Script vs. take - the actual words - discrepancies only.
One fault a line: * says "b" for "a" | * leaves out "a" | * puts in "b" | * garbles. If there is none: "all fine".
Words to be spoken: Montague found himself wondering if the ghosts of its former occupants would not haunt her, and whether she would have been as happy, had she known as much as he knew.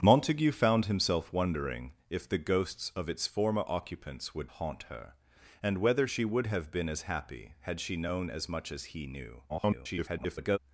* leaves out "not"
* garbles